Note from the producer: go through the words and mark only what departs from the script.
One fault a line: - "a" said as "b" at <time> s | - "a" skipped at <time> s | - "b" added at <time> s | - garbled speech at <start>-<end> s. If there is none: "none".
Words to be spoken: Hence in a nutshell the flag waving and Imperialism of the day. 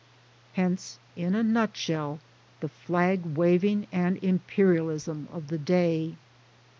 none